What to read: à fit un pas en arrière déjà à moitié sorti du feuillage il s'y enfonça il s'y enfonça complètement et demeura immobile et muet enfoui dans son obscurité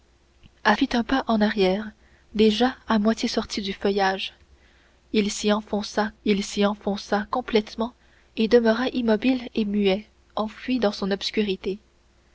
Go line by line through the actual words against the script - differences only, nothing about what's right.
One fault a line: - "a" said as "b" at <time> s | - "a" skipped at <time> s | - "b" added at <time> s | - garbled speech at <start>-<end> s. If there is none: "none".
none